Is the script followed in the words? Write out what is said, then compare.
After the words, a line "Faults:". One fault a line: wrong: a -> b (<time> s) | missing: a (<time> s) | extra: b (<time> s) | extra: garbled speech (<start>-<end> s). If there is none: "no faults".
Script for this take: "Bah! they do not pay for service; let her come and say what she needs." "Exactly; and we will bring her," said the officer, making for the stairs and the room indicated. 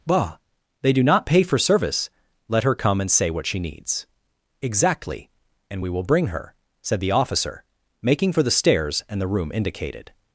"Bah! they do not pay for service; let her come and say what she needs." "Exactly; and we will bring her," said the officer, making for the stairs and the room indicated.
Faults:
no faults